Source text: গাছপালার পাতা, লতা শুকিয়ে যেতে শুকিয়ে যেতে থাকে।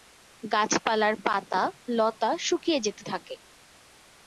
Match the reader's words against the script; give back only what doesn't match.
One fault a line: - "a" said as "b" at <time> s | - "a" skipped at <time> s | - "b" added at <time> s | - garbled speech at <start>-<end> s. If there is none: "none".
- "শুকিয়ে যেতে" skipped at 3.0 s